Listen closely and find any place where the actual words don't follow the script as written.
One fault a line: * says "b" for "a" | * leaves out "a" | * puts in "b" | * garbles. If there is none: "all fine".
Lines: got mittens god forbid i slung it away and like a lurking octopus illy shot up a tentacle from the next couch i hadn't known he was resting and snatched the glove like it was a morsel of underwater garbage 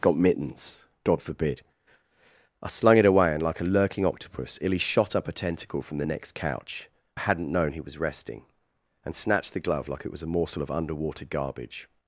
all fine